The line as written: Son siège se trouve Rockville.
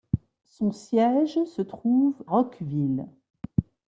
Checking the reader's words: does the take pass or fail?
pass